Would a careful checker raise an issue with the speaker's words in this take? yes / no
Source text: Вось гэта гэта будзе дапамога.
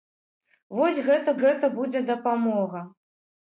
no